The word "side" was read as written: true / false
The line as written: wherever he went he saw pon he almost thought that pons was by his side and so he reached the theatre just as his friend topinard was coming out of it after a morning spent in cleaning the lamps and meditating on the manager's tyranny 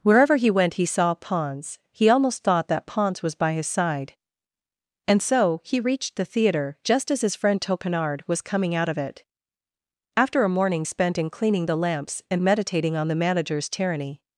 true